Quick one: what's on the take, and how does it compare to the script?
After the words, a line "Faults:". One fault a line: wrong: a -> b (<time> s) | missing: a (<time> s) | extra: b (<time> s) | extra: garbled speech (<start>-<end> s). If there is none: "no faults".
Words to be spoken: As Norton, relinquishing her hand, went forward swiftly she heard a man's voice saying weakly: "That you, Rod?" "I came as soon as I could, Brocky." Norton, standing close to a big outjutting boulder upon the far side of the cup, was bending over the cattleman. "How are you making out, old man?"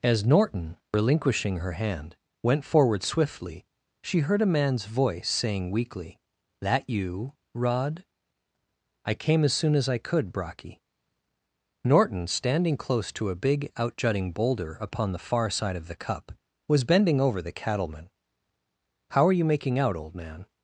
As Norton, relinquishing her hand, went forward swiftly she heard a man's voice saying weakly: "That you, Rod?" "I came as soon as I could, Brocky." Norton, standing close to a big outjutting boulder upon the far side of the cup, was bending over the cattleman. "How are you making out, old man?"
Faults:
no faults